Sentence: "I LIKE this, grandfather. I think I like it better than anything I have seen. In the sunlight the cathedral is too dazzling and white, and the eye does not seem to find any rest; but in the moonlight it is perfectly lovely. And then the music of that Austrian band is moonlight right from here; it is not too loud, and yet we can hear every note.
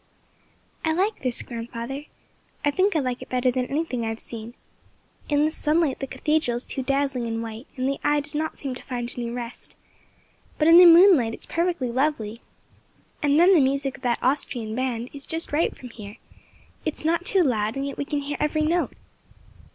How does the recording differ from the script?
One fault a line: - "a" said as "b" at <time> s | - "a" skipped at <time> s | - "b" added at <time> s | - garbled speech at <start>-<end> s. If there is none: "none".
- "moonlight" said as "just" at 15.3 s